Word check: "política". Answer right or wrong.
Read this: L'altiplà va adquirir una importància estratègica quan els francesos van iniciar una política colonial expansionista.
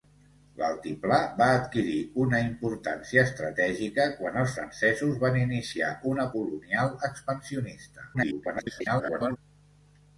wrong